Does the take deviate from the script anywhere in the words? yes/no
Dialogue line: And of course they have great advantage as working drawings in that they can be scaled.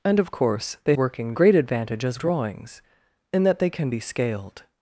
yes